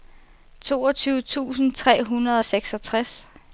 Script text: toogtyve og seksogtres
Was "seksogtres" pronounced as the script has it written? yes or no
yes